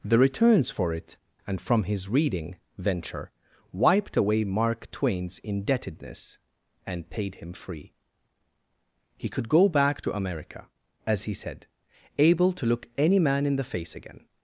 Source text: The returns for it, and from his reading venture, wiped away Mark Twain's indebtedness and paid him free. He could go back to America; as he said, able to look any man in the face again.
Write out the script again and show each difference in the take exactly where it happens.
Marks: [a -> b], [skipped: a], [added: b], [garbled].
The returns for it, and from his reading venture, wiped away Mark Twain's indebtedness and paid him free. He could go back to America; as he said, able to look any man in the face again.